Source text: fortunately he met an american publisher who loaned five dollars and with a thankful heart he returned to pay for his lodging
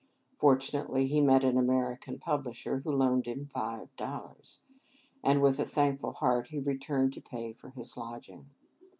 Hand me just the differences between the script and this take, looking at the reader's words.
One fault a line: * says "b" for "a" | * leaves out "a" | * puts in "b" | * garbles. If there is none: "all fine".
* puts in "him"